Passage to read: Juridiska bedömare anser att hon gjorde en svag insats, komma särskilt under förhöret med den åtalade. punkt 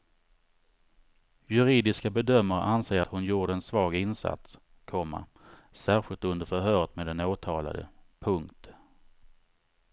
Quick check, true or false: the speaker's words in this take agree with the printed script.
false